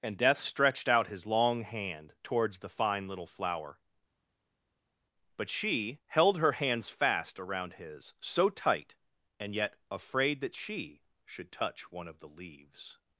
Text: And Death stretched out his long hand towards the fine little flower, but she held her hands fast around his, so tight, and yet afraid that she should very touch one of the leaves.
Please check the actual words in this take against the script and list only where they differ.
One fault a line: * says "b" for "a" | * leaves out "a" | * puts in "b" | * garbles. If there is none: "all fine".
* leaves out "very"